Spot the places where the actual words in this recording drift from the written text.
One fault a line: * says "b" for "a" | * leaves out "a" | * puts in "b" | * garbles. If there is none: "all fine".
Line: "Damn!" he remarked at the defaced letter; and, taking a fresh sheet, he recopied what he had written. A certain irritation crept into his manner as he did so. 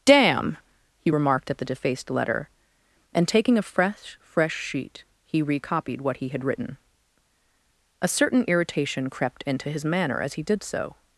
* puts in "fresh"